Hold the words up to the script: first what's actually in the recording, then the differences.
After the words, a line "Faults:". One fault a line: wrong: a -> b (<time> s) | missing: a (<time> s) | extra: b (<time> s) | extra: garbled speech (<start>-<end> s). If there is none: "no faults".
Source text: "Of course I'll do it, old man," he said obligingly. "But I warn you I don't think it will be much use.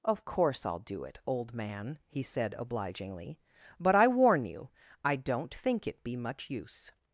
"Of course I'll do it, old man," he said obligingly. "But I warn you I don't think it be much use.
Faults:
missing: will (6.0 s)